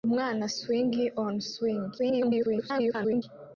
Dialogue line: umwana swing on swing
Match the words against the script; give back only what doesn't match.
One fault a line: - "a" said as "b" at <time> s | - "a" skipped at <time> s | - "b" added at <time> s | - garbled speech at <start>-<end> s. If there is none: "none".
- garbled speech at 2.0-3.2 s